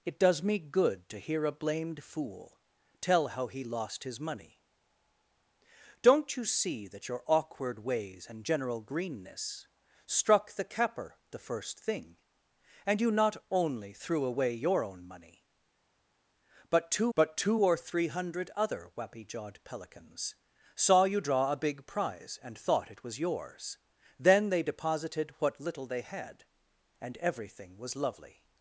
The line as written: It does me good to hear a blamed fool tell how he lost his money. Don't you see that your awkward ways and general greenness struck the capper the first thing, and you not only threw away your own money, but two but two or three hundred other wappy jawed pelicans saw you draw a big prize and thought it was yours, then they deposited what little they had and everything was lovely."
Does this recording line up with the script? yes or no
yes